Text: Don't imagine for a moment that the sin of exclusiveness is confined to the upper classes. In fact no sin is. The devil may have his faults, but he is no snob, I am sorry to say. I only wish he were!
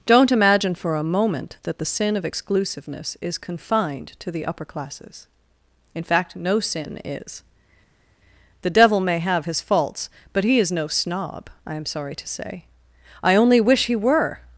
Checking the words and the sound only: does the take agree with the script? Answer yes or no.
yes